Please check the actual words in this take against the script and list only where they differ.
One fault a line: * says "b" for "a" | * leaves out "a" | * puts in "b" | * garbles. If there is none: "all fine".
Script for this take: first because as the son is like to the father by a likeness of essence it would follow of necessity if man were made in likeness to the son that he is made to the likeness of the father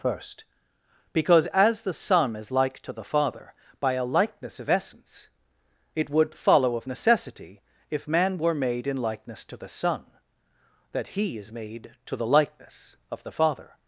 all fine